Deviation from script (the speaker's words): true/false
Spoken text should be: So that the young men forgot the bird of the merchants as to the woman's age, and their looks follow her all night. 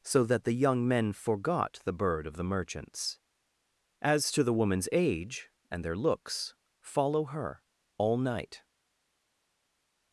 false